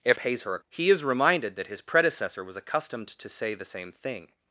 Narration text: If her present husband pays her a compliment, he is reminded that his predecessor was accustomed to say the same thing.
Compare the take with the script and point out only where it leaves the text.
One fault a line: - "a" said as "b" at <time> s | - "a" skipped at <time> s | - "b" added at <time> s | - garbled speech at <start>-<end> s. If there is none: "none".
- "her present husband" skipped at 0.2 s
- "compliment" skipped at 0.6 s